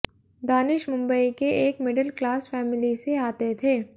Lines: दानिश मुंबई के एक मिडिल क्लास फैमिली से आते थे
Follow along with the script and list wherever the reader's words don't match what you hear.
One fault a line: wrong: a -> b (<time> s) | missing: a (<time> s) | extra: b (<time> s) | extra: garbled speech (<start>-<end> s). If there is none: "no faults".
no faults